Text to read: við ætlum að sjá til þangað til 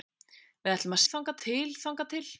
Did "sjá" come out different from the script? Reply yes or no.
yes